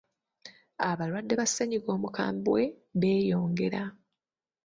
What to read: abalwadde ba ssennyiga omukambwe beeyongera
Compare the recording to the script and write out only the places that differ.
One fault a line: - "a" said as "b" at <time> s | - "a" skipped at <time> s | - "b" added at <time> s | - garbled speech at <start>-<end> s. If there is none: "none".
none